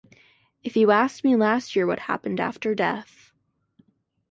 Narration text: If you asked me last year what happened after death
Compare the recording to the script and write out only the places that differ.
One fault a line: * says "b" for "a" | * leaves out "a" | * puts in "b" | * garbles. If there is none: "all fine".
all fine